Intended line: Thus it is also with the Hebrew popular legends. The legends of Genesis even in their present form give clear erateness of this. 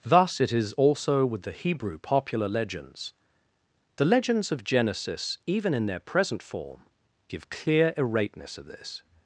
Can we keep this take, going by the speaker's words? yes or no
yes